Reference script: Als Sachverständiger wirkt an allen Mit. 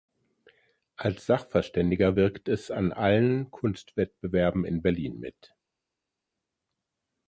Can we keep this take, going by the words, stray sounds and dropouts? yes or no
no